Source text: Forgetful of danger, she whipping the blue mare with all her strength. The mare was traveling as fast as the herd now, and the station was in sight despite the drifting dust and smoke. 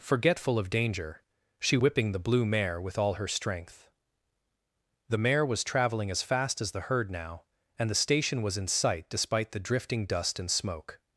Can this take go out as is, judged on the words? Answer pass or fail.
pass